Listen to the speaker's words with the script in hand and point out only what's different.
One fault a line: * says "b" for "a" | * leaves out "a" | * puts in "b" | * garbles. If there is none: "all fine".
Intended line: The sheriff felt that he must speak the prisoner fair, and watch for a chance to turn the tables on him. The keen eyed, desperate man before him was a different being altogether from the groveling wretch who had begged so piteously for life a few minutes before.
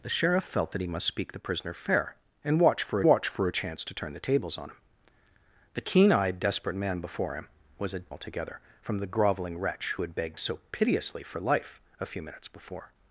* puts in "watch for"
* leaves out "different being"